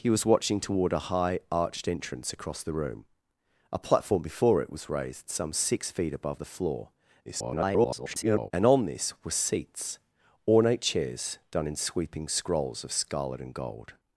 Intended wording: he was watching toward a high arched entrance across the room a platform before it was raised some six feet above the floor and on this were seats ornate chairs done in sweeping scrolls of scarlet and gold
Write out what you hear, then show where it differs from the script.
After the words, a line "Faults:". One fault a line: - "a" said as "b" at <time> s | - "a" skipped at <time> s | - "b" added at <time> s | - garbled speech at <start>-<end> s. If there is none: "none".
he was watching toward a high arched entrance across the room a platform before it was raised some six feet above the floor [garbled] and on this were seats ornate chairs done in sweeping scrolls of scarlet and gold
Faults:
- garbled speech at 7.3-8.5 s